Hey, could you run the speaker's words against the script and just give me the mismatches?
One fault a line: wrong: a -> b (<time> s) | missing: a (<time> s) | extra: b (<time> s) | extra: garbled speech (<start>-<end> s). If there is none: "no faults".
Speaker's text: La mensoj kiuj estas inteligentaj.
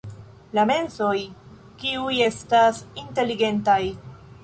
no faults